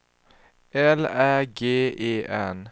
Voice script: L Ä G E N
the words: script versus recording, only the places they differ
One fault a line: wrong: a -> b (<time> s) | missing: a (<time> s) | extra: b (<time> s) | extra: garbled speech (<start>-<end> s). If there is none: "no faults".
no faults